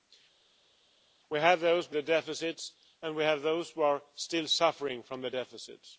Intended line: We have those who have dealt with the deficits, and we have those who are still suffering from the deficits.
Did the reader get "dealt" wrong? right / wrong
wrong